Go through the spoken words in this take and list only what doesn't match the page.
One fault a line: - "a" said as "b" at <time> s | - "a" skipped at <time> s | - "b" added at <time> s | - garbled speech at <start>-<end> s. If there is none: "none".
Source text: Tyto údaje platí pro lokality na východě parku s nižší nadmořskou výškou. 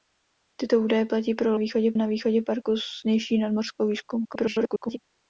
- "lokality" said as "východě" at 1.5 s
- garbled speech at 4.2-5.0 s